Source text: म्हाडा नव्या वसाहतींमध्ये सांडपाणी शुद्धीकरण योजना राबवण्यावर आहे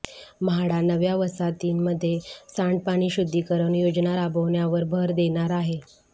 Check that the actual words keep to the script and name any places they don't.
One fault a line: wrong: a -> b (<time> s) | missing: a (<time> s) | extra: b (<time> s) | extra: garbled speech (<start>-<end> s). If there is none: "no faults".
extra: भर देणार (4.9 s)